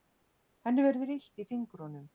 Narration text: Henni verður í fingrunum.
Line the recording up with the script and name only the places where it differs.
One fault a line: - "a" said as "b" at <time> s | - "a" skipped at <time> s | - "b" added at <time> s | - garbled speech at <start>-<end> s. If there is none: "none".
- "illt" added at 1.2 s